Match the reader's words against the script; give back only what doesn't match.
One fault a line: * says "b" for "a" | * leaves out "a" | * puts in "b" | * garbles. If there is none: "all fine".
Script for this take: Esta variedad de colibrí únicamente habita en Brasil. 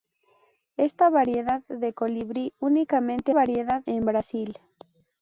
* says "variedad" for "habita"